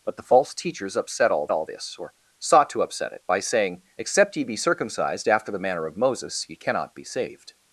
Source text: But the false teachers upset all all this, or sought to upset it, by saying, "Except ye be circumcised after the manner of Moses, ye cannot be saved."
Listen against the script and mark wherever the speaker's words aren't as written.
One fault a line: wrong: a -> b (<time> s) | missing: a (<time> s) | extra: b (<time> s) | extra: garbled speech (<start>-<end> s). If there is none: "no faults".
no faults